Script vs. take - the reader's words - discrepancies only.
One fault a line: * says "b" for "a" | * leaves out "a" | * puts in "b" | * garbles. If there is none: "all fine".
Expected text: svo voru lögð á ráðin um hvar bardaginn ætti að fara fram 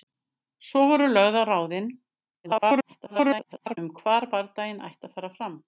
* garbles